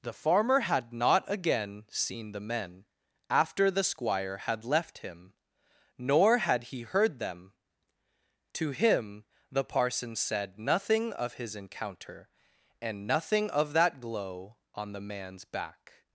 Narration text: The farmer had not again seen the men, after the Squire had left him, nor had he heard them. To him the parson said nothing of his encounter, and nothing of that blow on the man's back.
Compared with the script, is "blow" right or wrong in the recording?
wrong